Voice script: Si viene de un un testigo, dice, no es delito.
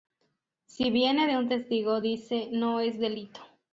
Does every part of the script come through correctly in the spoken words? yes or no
no